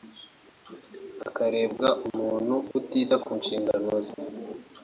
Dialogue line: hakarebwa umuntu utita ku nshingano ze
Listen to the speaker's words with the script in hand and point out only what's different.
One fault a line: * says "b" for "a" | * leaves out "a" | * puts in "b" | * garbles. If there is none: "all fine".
all fine